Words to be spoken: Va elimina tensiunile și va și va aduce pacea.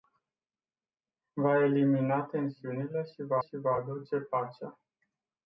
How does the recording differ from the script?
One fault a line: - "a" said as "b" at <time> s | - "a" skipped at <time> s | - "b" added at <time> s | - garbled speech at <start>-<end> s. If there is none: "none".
none